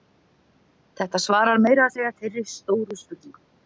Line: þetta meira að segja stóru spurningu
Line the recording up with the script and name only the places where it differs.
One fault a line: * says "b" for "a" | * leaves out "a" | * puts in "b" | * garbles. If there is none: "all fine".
* puts in "svarar"
* puts in "þeirri"